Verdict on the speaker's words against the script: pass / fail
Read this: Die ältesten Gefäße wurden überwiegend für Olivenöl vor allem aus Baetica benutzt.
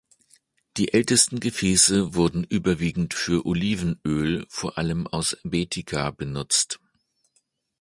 pass